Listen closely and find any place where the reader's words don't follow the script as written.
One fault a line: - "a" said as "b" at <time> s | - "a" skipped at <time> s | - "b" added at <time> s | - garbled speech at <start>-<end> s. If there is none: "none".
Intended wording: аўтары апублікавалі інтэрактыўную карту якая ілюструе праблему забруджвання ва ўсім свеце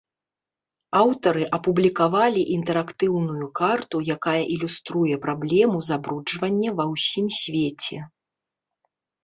none